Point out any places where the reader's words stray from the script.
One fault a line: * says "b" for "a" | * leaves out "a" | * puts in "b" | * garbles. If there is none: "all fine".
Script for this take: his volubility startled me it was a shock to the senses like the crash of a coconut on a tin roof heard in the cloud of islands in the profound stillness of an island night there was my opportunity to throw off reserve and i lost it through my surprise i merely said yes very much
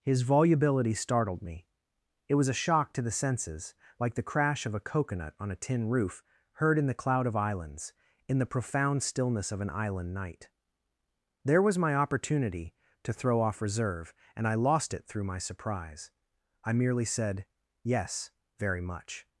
all fine